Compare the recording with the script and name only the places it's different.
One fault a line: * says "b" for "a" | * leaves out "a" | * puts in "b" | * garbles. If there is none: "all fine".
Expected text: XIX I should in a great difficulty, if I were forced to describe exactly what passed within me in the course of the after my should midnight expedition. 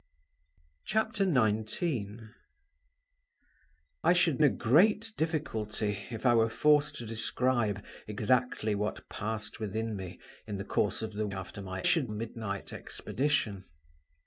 all fine